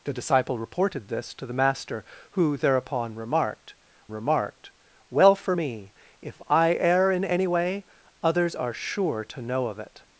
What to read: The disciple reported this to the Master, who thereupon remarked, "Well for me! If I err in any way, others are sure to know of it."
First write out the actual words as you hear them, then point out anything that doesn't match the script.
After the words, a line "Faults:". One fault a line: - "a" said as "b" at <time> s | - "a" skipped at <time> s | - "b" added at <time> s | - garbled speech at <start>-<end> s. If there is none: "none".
The disciple reported this to the Master, who thereupon remarked remarked, "Well for me! If I err in any way, others are sure to know of it."
Faults:
- "remarked" added at 4.1 s